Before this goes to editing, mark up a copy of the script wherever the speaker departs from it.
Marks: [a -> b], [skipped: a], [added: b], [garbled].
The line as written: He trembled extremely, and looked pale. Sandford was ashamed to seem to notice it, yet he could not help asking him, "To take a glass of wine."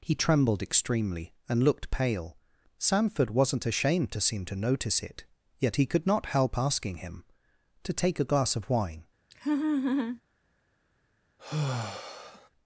He trembled extremely, and looked pale. Sandford [was -> wasn't] ashamed to seem to notice it, yet he could not help asking him, "To take a glass of wine."